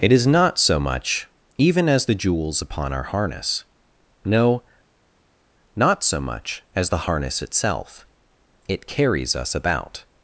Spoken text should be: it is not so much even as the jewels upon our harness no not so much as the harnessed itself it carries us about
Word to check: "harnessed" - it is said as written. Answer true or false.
false